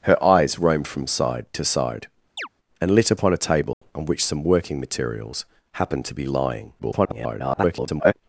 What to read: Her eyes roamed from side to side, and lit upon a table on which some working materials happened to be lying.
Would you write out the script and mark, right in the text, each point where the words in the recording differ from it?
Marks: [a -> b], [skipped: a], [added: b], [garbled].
Her eyes roamed from side to side, and lit upon a table on which some working materials happened to be lying. [garbled]